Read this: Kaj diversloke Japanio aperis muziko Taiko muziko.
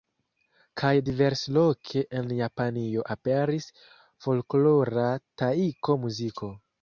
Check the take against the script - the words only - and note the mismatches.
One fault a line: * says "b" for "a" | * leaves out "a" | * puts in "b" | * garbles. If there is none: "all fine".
* puts in "en"
* says "folklora" for "muziko"